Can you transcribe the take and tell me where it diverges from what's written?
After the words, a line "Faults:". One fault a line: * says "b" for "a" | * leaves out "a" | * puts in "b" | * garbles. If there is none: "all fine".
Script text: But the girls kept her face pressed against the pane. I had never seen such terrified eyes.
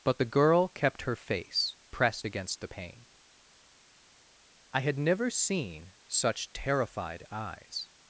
But the girl kept her face pressed against the pane. I had never seen such terrified eyes.
Faults:
* says "girl" for "girls"